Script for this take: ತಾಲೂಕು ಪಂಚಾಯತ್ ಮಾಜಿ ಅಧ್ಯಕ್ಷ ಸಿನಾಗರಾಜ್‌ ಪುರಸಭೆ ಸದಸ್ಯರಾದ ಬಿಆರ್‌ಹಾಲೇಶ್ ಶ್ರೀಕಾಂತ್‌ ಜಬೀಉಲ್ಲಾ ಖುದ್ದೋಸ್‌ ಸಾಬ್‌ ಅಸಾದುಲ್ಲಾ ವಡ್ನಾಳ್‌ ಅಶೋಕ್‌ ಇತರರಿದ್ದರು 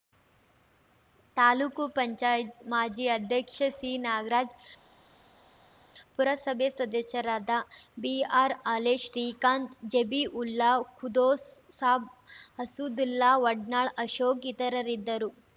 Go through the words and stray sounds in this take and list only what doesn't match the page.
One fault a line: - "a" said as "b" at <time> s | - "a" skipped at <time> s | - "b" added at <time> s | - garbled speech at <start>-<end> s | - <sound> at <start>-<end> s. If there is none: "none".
none